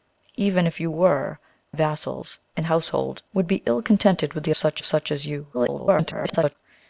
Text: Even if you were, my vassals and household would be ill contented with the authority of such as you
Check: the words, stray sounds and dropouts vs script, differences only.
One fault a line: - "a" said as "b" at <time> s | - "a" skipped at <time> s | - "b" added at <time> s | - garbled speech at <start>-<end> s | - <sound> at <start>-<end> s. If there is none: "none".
- "my" skipped at 1.4 s
- "authority" said as "such" at 4.6 s
- garbled speech at 5.5-6.6 s